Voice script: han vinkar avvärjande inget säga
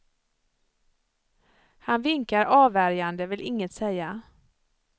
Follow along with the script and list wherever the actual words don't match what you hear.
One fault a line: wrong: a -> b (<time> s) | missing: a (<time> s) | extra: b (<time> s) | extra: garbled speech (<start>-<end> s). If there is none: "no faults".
extra: vill (3.2 s)